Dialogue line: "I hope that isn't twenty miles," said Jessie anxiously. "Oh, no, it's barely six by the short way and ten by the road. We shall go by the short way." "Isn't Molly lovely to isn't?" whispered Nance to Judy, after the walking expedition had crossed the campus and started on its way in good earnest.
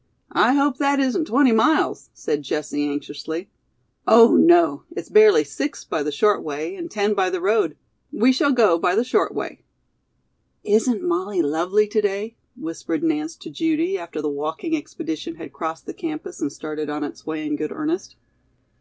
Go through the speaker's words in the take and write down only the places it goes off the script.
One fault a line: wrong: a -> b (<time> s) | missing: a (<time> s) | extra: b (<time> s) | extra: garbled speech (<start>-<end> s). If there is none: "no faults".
wrong: isn't -> day (12.0 s)